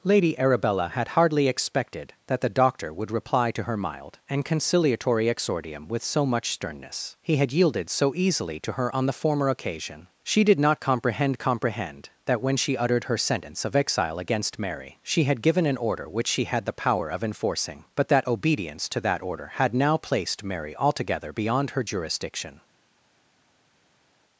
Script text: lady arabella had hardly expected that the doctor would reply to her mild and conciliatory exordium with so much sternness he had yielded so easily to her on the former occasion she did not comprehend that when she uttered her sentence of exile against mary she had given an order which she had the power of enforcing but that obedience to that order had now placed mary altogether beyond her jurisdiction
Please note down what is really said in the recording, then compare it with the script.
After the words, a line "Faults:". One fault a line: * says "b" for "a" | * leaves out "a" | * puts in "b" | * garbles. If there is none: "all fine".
lady arabella had hardly expected that the doctor would reply to her mild and conciliatory exordium with so much sternness he had yielded so easily to her on the former occasion she did not comprehend comprehend that when she uttered her sentence of exile against mary she had given an order which she had the power of enforcing but that obedience to that order had now placed mary altogether beyond her jurisdiction
Faults:
* puts in "comprehend"